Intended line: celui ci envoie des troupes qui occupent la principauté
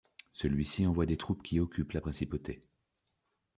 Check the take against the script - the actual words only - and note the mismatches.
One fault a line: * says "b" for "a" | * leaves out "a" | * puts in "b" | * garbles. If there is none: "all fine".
all fine